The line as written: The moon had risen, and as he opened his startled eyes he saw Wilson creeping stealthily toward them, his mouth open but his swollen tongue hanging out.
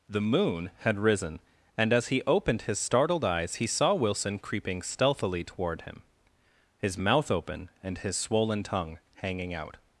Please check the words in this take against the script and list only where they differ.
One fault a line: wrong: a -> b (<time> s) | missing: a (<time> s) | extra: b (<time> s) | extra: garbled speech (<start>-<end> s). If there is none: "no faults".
wrong: them -> him (5.8 s)
wrong: but -> and (7.8 s)